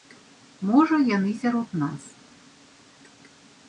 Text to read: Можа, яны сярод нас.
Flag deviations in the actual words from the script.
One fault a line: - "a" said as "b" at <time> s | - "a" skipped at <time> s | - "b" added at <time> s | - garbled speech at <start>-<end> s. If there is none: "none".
none